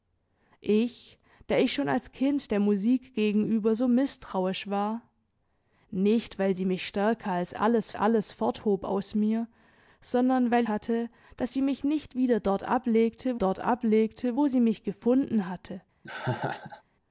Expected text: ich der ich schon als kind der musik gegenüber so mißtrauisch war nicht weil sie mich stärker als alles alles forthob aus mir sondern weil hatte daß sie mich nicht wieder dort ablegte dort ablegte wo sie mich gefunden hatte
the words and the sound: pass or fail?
fail